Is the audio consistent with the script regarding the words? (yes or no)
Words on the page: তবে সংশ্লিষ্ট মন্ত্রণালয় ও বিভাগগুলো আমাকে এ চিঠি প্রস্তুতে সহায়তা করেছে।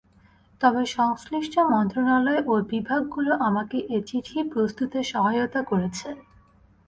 yes